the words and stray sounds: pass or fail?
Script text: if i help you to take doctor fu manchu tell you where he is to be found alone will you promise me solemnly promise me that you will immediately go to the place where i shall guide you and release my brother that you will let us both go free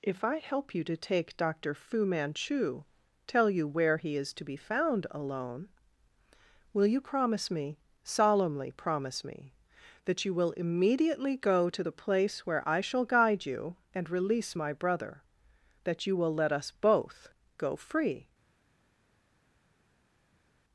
pass